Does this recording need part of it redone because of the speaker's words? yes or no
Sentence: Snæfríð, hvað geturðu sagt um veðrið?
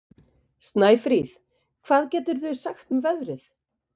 no